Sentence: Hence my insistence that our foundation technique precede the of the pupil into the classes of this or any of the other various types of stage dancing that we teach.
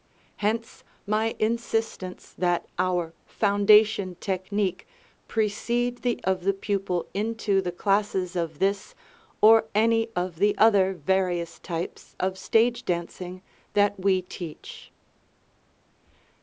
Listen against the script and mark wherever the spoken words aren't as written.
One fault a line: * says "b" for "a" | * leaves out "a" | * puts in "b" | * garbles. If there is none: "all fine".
all fine